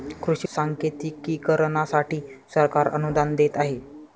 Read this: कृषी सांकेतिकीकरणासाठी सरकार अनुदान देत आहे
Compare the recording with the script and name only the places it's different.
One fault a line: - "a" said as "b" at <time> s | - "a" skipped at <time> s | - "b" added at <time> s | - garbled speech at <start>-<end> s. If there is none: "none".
none